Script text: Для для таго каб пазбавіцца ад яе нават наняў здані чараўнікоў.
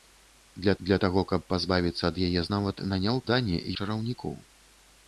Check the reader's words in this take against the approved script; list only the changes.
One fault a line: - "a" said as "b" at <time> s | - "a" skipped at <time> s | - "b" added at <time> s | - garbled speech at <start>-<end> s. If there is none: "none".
none